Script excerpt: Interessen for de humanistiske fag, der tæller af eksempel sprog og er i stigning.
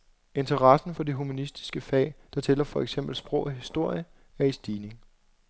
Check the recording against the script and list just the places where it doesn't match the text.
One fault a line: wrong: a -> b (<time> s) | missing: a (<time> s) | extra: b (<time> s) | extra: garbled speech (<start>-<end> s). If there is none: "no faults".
wrong: af -> for (2.6 s)
extra: historie (3.5 s)